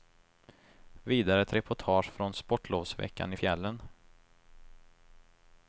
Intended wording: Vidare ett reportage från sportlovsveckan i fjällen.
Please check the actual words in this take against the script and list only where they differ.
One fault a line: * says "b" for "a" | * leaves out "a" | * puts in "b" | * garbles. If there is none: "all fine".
all fine